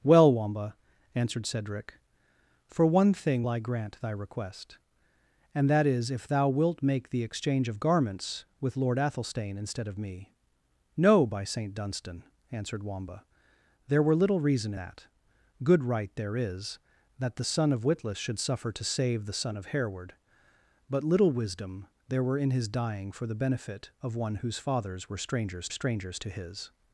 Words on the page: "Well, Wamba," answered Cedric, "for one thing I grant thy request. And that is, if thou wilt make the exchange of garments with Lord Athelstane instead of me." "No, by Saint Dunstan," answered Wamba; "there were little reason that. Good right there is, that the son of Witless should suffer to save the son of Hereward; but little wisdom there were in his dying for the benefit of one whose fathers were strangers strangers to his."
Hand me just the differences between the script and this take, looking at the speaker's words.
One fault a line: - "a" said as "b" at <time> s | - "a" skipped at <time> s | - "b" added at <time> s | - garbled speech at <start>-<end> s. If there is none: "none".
none